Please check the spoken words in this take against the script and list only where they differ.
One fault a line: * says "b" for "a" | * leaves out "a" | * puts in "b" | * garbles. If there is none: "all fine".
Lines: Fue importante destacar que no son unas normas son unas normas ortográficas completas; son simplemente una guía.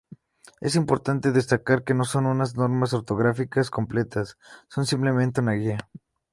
* says "Es" for "Fue"
* leaves out "son unas normas"